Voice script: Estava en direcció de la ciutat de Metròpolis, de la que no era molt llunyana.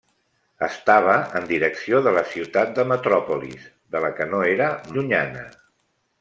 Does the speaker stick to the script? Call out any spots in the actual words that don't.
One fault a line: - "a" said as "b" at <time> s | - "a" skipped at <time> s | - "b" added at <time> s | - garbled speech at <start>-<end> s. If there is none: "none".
- "molt" skipped at 4.8 s